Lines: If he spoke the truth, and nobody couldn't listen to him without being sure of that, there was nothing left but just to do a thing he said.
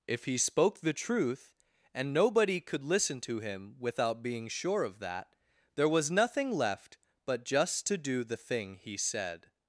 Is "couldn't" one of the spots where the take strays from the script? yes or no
yes